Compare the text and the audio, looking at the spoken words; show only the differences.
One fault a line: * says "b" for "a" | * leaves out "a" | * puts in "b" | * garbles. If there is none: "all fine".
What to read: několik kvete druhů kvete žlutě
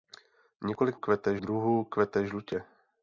all fine